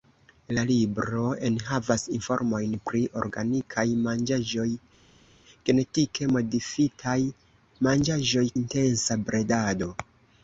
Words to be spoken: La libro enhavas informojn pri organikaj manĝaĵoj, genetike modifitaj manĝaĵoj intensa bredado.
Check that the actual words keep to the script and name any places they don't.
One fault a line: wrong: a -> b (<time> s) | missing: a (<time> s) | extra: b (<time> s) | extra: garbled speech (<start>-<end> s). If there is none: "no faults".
no faults